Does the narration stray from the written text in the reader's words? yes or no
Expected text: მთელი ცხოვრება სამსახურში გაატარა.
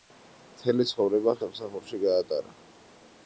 no